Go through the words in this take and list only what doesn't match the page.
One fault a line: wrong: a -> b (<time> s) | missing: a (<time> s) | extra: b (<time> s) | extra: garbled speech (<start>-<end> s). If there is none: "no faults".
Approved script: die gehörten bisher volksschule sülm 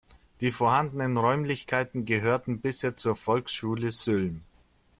extra: vorhandenen räumlichkeiten (0.5 s)
extra: zur (3.0 s)